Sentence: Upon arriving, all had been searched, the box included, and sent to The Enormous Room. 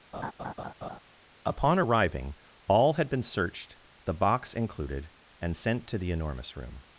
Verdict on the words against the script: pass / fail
pass